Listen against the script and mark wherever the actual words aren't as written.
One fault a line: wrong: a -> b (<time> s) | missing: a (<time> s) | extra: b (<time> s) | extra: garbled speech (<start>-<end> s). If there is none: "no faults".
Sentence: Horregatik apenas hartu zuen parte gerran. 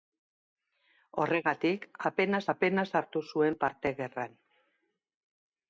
extra: apenas (2.5 s)